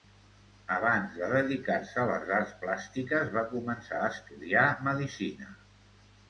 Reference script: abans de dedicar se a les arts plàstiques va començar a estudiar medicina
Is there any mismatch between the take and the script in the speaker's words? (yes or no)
no